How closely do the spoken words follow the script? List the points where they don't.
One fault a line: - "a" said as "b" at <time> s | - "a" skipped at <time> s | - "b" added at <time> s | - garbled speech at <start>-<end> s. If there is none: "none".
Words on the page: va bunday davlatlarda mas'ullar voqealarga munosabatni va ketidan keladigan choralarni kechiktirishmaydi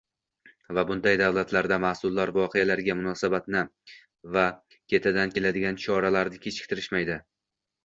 none